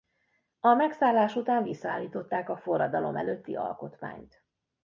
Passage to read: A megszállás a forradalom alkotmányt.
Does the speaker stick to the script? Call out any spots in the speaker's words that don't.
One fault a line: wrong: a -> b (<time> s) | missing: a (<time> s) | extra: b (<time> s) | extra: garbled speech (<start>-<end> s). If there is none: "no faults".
extra: után visszaállították (1.4 s)
extra: előtti (3.2 s)